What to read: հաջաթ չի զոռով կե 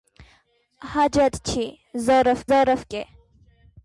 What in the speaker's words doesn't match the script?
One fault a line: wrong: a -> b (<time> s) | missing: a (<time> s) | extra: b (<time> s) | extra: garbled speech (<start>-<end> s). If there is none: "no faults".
extra: զոռով (2.5 s)